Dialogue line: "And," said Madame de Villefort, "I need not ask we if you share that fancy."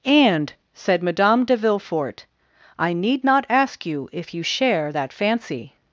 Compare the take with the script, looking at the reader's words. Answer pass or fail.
fail